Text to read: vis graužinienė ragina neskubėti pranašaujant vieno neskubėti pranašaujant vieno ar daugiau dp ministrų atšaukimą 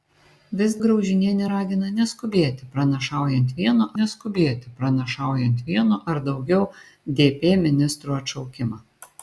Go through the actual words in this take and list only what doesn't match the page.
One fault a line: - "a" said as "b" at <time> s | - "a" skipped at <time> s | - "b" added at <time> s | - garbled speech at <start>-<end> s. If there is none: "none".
none